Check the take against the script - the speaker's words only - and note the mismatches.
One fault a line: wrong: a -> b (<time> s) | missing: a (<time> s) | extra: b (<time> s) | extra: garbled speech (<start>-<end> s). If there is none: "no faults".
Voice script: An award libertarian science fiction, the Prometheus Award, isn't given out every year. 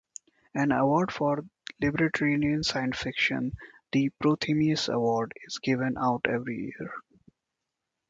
extra: for (1.1 s)
wrong: isn't -> is (5.4 s)